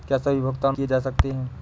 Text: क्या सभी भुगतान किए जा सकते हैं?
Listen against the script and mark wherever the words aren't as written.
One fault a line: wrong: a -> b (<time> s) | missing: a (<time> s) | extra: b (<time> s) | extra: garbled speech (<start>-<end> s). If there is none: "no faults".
no faults